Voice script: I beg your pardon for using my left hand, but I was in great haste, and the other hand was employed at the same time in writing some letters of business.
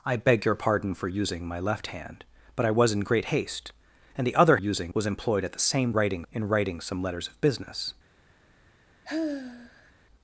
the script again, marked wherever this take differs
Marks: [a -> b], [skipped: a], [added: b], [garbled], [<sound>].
I beg your pardon for using my left hand, but I was in great haste, and the other [hand -> using] was employed at the same [time -> writing] in writing some letters of business. [sigh]